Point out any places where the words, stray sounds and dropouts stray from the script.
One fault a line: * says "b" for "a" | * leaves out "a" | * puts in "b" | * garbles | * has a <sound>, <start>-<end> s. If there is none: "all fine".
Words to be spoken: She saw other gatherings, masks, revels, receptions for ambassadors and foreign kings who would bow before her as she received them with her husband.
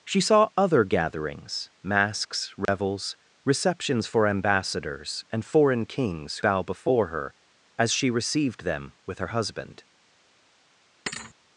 * has a dropout, 2.7-2.7 s
* leaves out "who would"
* has a thud, 11.1-11.3 s